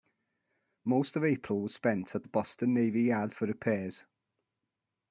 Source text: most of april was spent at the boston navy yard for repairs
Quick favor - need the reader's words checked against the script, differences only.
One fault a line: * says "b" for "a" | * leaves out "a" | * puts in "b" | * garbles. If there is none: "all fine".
all fine